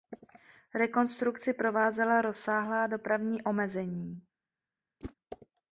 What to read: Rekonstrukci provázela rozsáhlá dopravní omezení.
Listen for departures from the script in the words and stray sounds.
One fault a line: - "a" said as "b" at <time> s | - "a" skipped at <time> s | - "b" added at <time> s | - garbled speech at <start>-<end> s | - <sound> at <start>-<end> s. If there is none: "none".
- whoosh at 5.0-5.1 s